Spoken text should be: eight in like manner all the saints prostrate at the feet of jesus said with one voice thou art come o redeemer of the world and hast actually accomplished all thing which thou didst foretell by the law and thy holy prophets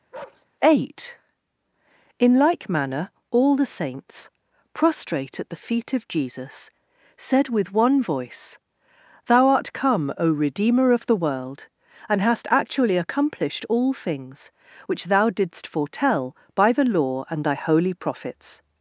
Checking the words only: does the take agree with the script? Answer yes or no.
no